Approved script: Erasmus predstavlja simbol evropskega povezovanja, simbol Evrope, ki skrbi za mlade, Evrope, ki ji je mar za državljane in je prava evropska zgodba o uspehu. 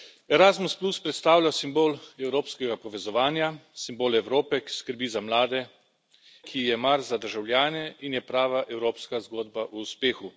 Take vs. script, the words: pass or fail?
fail